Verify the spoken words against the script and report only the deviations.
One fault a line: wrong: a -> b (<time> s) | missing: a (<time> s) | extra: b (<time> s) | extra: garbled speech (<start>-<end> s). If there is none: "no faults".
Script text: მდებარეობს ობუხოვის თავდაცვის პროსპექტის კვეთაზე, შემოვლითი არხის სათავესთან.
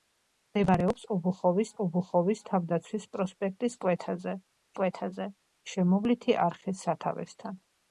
extra: ობუხოვის (1.8 s)
extra: კვეთაზე (4.8 s)